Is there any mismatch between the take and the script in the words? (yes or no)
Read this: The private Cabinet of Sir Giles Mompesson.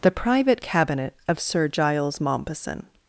no